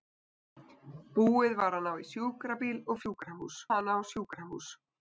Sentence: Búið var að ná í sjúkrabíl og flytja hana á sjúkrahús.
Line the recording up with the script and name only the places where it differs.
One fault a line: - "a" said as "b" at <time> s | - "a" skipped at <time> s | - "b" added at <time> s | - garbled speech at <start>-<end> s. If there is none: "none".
- "flytja" said as "sjúkrahús" at 3.0 s